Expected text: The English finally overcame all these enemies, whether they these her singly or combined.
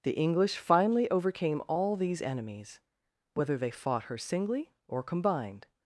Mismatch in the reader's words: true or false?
true